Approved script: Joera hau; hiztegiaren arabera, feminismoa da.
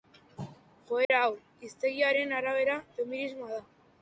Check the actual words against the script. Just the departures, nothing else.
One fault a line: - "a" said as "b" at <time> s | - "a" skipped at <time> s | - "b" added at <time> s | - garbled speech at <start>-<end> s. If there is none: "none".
none